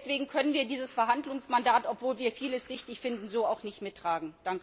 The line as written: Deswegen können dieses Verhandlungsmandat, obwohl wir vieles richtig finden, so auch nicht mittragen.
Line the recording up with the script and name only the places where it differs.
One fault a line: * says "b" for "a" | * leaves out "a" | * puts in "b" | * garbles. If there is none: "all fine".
* puts in "wir"